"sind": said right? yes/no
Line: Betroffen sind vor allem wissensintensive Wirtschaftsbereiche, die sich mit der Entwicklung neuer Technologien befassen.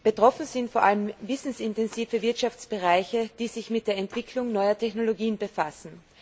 yes